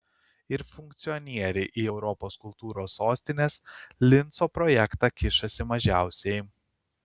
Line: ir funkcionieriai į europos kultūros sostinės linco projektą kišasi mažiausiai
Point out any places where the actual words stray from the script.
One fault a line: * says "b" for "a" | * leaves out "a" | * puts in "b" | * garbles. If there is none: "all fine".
all fine